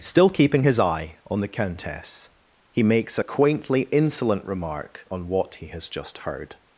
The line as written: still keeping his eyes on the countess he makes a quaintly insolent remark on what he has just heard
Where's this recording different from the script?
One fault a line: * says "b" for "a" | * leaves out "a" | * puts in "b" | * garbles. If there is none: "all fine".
* says "eye" for "eyes"